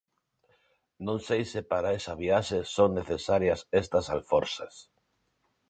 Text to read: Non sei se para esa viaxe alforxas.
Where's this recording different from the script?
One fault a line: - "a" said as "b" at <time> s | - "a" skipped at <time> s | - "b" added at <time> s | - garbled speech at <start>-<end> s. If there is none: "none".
- "son necesarias estas" added at 2.8 s